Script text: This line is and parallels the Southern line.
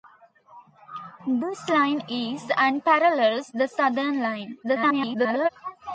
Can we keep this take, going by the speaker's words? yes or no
no